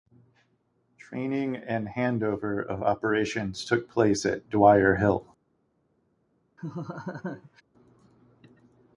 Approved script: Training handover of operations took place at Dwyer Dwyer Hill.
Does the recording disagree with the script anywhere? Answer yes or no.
yes